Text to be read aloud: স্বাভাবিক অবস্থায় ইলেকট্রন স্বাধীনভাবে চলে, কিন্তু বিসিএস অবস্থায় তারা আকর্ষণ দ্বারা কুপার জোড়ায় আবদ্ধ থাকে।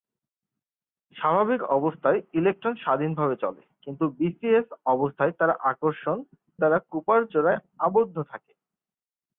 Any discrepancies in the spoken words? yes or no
no